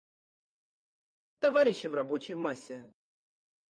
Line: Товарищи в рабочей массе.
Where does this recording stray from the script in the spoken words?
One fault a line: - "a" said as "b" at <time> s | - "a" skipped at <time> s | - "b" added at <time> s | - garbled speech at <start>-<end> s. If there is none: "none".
none